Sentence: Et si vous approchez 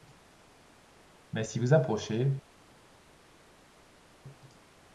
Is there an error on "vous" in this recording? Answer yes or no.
no